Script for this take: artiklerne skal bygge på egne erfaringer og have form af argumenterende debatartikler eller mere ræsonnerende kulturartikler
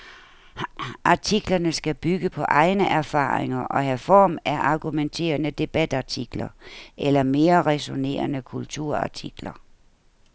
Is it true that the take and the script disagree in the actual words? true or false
false